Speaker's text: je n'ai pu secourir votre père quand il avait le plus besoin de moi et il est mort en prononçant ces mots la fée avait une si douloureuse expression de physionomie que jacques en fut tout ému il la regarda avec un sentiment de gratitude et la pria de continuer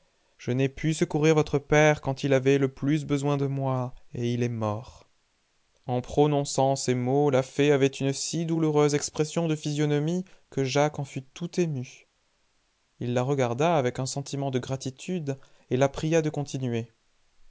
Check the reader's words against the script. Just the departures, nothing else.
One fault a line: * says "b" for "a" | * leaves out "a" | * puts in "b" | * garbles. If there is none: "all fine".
all fine